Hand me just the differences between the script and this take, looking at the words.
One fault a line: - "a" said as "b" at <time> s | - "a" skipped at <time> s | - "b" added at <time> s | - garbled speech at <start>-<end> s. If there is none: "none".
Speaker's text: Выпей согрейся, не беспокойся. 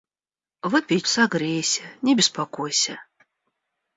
none